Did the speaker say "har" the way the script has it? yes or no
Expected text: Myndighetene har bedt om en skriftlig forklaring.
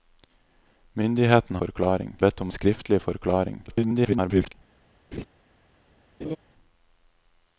no